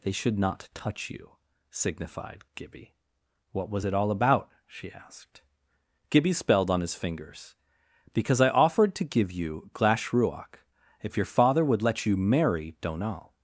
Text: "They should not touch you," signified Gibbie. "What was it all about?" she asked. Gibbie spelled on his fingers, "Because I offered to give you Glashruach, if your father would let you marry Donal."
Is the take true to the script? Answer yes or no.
yes